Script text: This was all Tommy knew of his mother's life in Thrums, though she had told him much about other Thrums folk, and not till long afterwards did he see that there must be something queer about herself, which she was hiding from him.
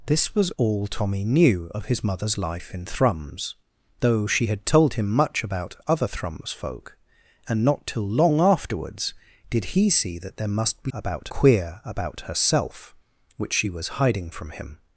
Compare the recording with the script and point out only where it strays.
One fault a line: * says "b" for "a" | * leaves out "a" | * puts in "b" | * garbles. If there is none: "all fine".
* says "about" for "something"